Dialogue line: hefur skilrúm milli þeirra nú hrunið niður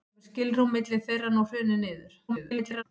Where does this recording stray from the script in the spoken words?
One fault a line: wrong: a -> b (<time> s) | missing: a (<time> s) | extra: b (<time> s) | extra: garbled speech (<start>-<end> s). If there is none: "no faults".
extra: garbled speech (2.3-2.8 s)